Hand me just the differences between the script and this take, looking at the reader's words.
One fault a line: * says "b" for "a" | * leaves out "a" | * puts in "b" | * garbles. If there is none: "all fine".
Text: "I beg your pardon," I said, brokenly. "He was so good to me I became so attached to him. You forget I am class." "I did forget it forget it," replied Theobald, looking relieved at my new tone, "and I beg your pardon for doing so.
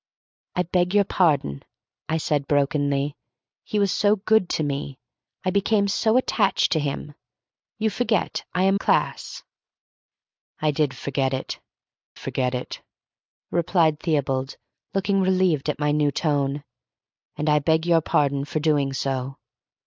all fine